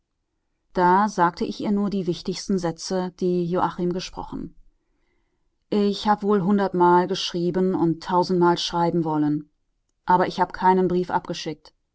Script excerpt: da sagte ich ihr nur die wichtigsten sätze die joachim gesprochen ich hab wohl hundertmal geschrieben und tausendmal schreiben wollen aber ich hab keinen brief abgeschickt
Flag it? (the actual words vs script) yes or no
no